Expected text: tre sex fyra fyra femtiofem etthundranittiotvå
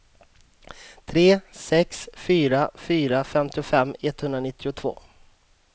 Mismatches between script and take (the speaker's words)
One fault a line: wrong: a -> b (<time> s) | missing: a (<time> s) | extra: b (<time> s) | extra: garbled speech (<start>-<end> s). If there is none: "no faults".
no faults